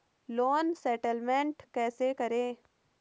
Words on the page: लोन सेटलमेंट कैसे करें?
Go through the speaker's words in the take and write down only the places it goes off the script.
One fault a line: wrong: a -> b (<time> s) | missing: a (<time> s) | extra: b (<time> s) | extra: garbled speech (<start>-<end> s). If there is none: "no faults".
no faults